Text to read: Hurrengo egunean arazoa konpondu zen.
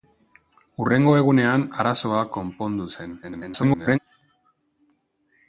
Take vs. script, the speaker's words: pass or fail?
fail